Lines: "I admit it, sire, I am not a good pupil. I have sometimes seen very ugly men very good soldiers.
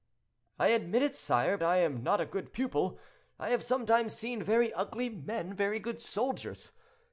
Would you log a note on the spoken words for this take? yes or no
no